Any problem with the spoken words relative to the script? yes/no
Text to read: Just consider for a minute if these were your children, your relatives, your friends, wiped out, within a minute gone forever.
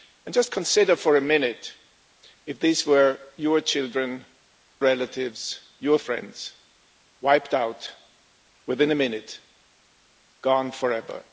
yes